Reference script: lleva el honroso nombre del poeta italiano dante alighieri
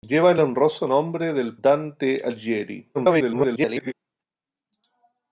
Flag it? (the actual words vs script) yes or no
yes